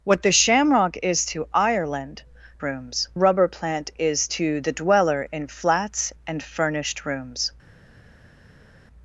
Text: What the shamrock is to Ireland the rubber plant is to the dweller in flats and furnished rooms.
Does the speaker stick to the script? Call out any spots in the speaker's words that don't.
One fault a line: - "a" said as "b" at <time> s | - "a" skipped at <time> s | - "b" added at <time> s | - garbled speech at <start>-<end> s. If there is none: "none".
- "the" said as "rooms" at 2.6 s